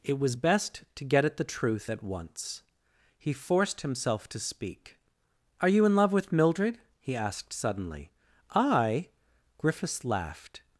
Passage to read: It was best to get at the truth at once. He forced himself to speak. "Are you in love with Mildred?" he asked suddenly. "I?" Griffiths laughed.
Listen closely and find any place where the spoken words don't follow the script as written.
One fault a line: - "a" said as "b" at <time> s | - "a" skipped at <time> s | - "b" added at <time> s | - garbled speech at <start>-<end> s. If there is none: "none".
none